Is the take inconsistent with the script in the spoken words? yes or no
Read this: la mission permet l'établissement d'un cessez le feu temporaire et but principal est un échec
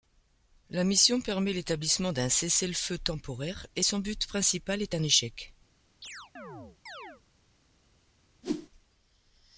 yes